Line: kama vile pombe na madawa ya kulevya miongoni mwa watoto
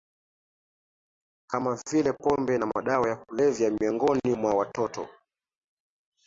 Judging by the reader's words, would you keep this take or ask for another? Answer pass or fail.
pass